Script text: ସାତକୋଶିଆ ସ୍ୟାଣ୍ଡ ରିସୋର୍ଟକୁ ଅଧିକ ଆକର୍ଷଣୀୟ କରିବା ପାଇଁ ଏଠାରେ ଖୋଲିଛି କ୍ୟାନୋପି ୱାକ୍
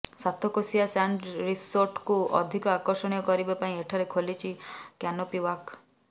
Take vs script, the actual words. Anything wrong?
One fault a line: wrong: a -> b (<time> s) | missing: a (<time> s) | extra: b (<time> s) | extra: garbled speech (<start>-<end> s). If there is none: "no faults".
no faults